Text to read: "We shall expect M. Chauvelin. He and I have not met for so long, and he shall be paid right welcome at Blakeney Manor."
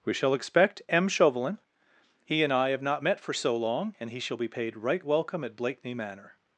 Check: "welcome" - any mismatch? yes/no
no